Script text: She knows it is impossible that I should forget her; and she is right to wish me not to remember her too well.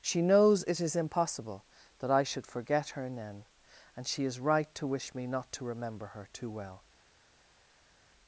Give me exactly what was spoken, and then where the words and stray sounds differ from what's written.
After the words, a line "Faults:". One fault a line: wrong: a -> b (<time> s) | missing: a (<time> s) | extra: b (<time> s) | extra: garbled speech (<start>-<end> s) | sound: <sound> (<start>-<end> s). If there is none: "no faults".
She knows it is impossible that I should forget her; then and she is right to wish me not to remember her too well.
Faults:
extra: then (3.1 s)